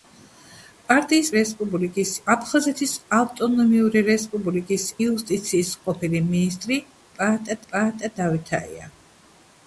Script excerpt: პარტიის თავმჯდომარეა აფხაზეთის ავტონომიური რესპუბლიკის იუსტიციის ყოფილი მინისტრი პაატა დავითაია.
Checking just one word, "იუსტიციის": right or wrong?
right